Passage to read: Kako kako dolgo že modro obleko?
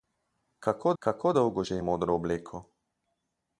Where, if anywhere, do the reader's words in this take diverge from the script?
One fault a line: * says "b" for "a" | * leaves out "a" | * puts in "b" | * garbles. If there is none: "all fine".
all fine